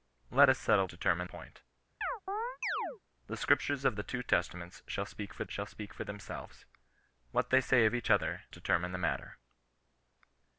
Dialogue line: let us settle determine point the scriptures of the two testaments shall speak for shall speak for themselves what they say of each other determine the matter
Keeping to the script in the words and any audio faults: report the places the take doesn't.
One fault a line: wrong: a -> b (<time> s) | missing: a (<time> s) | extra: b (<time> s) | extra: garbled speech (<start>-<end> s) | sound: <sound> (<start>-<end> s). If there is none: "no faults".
sound: chirp (2.0-3.0 s)